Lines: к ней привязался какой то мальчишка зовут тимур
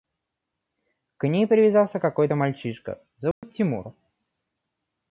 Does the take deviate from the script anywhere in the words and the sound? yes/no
yes